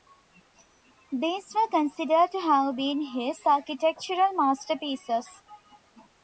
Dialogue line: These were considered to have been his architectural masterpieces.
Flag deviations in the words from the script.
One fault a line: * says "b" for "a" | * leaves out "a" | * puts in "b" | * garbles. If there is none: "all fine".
all fine